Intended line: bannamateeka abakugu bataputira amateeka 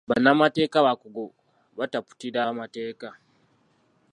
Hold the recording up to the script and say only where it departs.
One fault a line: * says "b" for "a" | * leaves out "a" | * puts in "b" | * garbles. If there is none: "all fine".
all fine